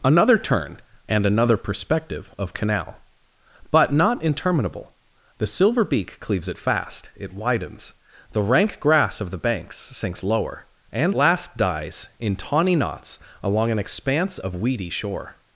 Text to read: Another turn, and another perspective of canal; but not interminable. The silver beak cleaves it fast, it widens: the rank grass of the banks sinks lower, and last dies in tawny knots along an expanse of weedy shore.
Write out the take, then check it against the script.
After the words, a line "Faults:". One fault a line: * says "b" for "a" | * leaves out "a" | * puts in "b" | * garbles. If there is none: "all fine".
Another turn, and another perspective of canal; but not interminable. The silver beak cleaves it fast, it widens: the rank grass of the banks sinks lower, and last dies in tawny knots along an expanse of weedy shore.
Faults:
all fine